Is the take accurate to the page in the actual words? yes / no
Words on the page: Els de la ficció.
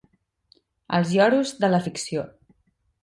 no